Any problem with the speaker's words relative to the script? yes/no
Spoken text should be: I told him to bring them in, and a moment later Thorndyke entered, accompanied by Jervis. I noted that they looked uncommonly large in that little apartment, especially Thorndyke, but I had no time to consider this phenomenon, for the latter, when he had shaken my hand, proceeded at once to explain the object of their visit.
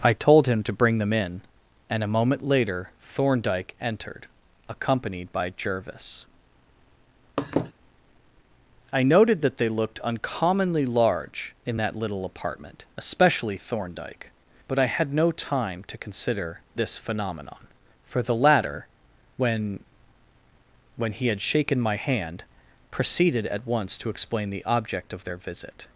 yes